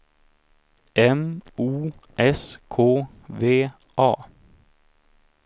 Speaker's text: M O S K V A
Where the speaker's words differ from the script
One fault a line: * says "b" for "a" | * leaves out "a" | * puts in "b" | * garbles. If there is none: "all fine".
all fine